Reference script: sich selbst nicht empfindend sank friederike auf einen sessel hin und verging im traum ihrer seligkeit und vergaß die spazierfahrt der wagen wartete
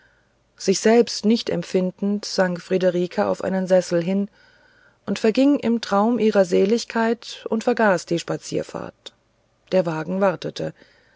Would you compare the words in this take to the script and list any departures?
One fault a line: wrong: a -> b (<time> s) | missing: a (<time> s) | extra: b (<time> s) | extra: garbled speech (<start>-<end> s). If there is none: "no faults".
no faults